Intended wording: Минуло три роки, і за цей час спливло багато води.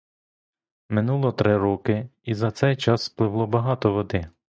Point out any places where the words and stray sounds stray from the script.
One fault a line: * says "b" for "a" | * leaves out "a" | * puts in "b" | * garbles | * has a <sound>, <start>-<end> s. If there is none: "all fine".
all fine